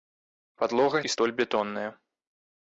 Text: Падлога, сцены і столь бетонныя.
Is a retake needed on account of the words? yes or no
yes